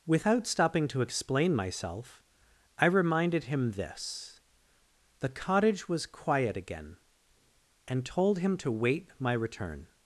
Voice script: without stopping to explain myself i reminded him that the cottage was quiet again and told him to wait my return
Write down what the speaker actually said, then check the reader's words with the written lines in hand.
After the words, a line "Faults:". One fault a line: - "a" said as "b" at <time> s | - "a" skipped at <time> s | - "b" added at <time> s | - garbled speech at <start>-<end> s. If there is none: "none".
without stopping to explain myself i reminded him this the cottage was quiet again and told him to wait my return
Faults:
- "that" said as "this" at 3.7 s